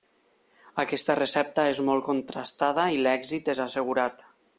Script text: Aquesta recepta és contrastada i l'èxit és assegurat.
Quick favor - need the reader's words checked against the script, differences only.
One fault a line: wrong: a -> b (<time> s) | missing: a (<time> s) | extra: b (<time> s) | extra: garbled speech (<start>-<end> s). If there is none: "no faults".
extra: molt (1.9 s)